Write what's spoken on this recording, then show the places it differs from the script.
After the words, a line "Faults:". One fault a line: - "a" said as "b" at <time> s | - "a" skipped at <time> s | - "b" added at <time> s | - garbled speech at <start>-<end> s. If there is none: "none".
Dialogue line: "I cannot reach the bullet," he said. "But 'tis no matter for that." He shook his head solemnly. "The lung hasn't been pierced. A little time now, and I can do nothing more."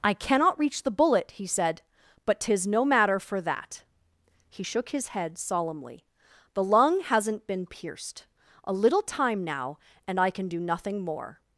"I cannot reach the bullet," he said. "But 'tis no matter for that." He shook his head solemnly. "The lung hasn't been pierced. A little time now, and I can do nothing more."
Faults:
none